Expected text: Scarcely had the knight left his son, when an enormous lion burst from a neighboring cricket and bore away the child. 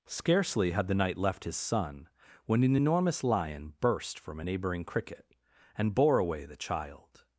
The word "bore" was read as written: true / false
true